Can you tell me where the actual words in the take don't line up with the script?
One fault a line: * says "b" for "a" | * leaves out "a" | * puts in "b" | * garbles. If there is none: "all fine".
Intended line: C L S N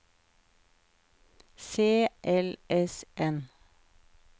all fine